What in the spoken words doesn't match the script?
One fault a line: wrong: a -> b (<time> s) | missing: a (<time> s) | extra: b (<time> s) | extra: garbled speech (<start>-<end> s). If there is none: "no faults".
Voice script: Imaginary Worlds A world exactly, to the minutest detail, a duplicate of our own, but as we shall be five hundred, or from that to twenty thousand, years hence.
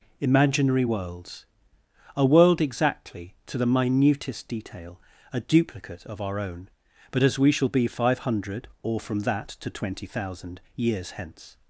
no faults